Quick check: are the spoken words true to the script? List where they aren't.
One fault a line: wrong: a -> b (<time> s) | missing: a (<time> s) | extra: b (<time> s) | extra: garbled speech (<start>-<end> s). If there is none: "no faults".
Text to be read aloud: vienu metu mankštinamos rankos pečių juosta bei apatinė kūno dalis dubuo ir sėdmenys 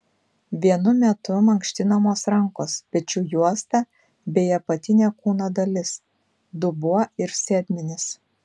no faults